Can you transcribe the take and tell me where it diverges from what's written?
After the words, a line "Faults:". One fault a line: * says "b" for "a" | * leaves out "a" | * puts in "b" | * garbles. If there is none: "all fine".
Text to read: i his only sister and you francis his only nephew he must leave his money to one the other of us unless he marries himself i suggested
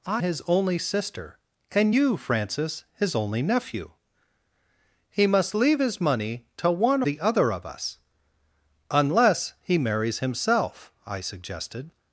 i his only sister and you francis his only nephew he must leave his money to one the other of us unless he marries himself i suggested
Faults:
all fine